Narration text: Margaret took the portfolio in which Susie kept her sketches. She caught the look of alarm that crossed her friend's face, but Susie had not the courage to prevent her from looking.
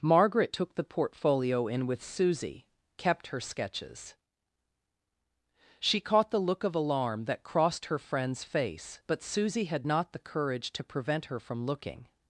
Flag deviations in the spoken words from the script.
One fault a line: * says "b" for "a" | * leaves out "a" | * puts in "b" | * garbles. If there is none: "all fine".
* says "with" for "which"